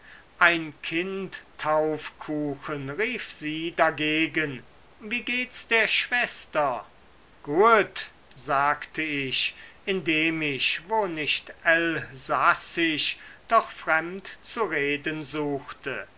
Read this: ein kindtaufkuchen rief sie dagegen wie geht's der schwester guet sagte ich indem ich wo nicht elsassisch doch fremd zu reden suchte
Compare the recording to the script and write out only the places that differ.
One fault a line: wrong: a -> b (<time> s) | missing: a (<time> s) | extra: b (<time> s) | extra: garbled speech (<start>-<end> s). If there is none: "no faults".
no faults